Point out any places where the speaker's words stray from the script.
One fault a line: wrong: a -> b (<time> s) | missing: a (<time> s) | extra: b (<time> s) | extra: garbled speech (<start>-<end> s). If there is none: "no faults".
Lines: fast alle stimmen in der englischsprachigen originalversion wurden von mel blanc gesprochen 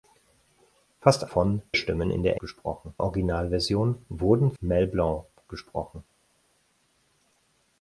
wrong: alle -> von (1.2 s)
wrong: englischsprachigen -> gesprochen (2.4 s)
missing: von (4.5 s)